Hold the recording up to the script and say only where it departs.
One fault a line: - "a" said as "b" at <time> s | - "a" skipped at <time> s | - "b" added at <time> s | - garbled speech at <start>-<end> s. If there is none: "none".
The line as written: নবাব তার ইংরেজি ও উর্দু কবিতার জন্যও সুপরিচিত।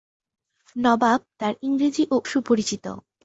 - "উর্দু কবিতার জন্যও" skipped at 2.2 s